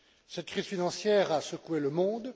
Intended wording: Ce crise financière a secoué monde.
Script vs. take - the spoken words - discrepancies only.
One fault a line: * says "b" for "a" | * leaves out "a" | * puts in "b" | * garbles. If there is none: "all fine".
* says "Cette" for "Ce"
* puts in "le"